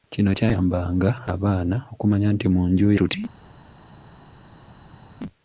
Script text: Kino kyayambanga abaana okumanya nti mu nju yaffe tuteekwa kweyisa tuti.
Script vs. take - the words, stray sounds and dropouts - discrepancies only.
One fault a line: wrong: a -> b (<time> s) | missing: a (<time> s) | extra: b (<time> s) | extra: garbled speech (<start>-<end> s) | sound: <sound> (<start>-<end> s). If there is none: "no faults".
missing: yaffe tuteekwa kweyisa (2.9 s)